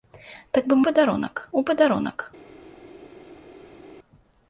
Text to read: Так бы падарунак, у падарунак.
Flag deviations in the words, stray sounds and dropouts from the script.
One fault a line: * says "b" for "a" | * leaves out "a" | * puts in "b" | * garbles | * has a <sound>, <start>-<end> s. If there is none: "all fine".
all fine